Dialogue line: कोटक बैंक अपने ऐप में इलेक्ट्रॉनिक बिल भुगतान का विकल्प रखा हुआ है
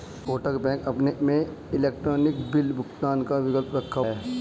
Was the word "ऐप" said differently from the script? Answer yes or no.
yes